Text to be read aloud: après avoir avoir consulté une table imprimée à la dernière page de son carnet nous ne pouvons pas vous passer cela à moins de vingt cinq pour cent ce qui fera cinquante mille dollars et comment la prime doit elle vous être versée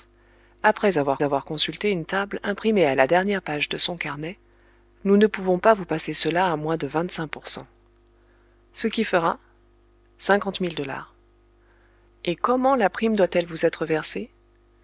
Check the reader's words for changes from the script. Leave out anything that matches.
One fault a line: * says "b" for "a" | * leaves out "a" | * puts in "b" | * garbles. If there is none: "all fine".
all fine